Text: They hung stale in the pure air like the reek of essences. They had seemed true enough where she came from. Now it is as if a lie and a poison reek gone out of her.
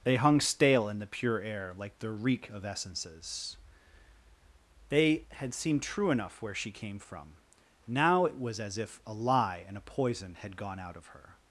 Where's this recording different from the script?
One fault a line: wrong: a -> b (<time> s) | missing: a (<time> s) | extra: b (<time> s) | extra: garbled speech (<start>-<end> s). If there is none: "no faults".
wrong: is -> was (8.4 s)
wrong: reek -> had (10.4 s)